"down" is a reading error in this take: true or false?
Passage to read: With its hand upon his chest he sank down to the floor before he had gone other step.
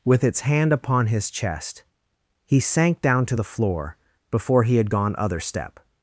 false